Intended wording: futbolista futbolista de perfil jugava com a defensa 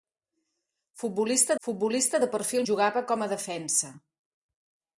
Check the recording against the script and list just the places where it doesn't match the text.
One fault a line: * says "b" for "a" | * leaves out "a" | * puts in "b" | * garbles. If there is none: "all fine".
all fine